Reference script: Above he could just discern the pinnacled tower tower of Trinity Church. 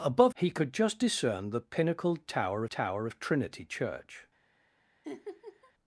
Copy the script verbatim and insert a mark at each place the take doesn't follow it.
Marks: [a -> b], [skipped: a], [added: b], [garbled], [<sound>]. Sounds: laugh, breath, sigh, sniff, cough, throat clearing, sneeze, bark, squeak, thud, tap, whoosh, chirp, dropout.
Above he could just discern the pinnacled tower tower of Trinity Church. [laugh]